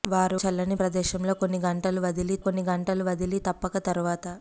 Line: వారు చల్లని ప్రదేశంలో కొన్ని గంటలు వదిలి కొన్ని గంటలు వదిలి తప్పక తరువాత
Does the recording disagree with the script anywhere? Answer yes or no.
no